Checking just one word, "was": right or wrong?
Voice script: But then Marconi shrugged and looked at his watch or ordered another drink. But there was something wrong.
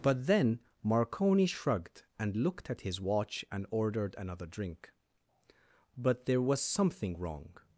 right